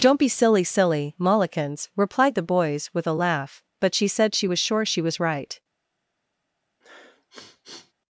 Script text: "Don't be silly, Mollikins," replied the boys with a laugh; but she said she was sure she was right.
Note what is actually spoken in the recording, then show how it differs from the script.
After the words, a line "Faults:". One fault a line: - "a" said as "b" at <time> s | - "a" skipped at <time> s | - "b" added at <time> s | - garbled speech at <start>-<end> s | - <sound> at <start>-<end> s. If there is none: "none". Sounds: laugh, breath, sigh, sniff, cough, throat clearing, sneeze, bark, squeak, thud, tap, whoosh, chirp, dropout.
"Don't be silly silly, Mollikins," replied the boys with a laugh; but she said she was sure she was right.
Faults:
- "silly" added at 0.6 s
- sniff at 6.8-7.9 s